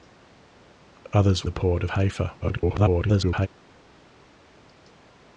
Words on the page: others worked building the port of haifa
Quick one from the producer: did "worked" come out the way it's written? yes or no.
no